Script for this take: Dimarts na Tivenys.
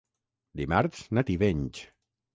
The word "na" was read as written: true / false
true